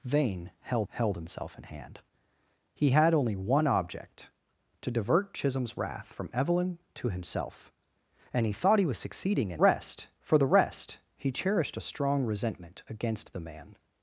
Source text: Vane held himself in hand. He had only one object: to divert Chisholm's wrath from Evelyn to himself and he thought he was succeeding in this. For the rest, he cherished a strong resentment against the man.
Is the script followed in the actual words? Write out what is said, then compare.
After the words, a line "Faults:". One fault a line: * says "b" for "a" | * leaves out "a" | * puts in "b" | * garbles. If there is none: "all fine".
Vane held held himself in hand. He had only one object: to divert Chisholm's wrath from Evelyn to himself and he thought he was succeeding in rest. For the rest, he cherished a strong resentment against the man.
Faults:
* puts in "held"
* says "rest" for "this"